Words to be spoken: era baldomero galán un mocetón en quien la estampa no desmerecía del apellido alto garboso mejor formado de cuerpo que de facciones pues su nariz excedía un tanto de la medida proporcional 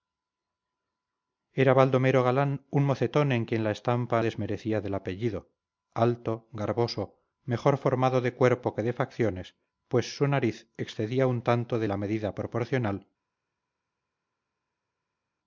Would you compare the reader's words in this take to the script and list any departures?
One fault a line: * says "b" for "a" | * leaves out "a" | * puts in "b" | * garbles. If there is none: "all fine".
* leaves out "no"